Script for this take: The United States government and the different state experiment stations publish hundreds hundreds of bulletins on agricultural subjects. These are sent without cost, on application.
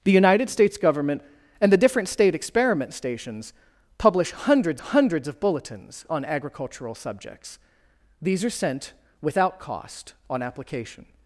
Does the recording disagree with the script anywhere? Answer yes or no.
no